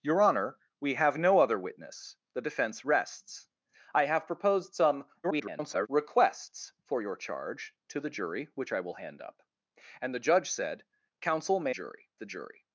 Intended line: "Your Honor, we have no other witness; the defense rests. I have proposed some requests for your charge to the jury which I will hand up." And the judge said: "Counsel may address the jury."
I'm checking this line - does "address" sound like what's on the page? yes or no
no